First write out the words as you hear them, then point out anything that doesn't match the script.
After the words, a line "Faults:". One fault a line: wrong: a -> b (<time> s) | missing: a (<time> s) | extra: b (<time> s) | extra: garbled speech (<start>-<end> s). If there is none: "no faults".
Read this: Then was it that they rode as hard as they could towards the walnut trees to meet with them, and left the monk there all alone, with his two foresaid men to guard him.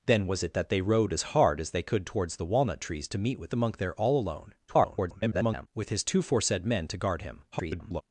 Then was it that they rode as hard as they could towards the walnut trees to meet with the monk there all alone, [garbled] with his two foresaid men to guard him. [garbled]
Faults:
missing: them and left (3.5 s)
extra: garbled speech (4.7-5.7 s)
extra: garbled speech (7.5-8.0 s)